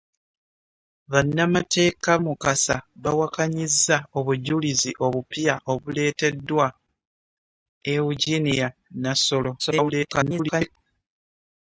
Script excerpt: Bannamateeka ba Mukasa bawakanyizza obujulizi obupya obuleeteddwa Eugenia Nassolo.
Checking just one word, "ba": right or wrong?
wrong